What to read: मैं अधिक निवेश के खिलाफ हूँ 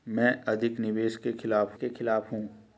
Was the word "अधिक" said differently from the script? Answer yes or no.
no